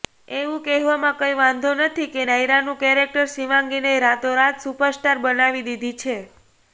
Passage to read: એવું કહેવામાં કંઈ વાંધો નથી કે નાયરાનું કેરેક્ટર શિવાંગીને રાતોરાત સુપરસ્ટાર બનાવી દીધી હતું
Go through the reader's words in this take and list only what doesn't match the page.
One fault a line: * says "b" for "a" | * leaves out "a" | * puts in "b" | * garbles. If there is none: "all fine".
* says "છે" for "હતું"